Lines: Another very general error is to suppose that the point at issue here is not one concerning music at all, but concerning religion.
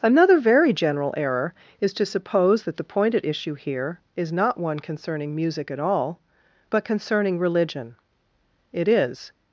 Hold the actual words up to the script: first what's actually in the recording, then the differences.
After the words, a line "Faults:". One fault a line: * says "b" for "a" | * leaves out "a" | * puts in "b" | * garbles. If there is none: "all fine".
Another very general error is to suppose that the point at issue here is not one concerning music at all, but concerning religion. It is
Faults:
* puts in "It is"